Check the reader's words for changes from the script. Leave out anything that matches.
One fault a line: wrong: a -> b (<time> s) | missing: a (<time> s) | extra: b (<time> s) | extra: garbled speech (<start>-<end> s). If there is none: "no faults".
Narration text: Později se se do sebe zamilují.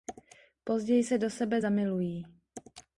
missing: se (1.2 s)